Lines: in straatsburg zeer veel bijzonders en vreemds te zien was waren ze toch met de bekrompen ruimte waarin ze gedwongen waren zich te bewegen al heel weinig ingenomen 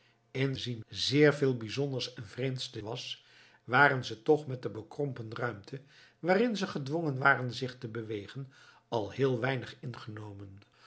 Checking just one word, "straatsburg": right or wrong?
wrong